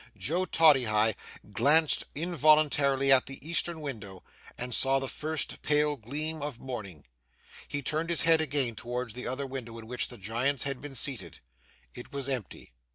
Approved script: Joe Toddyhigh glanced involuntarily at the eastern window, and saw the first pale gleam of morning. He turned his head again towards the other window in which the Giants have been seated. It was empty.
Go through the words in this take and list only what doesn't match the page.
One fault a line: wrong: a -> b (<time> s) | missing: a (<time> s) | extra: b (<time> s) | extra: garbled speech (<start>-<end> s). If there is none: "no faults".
wrong: have -> had (10.6 s)